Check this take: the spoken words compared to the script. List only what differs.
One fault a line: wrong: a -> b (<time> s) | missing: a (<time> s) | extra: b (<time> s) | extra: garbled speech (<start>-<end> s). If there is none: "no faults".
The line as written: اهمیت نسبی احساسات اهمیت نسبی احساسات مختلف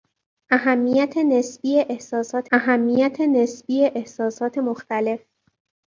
no faults